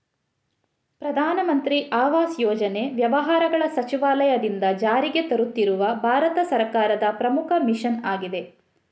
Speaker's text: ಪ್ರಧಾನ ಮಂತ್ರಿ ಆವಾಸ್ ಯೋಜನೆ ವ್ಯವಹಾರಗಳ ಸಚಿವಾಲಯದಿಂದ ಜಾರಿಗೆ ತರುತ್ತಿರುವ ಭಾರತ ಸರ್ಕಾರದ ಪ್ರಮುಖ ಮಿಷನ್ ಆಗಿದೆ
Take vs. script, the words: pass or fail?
pass